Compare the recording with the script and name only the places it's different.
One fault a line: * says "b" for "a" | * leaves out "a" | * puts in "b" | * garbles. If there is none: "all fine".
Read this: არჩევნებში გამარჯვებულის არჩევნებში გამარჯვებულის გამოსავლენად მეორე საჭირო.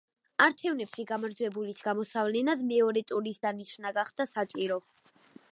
* says "გამოსავლენად მეორე ტურის დანიშვნა გახდა" for "არჩევნებში გამარჯვებულის გამოსავლენად მეორე"